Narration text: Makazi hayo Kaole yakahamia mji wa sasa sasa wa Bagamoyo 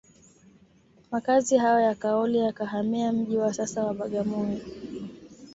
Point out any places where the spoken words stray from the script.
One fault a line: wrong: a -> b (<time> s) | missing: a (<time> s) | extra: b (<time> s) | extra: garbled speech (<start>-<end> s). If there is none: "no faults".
extra: ya (1.8 s)
missing: sasa (3.8 s)